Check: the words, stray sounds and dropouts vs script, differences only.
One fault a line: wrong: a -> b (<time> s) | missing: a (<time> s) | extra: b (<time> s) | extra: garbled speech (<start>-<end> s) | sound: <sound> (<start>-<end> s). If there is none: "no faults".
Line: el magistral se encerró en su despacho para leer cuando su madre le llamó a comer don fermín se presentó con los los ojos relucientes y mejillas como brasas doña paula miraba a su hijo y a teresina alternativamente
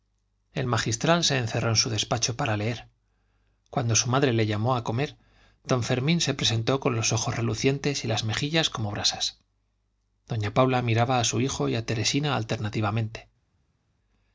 missing: los (7.1 s)
extra: las (8.1 s)